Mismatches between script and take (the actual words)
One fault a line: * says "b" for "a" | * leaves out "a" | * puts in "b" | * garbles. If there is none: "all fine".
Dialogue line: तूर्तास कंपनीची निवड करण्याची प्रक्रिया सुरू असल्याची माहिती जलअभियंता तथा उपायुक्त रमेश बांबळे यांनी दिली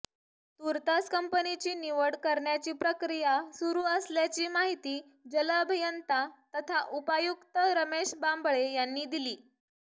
all fine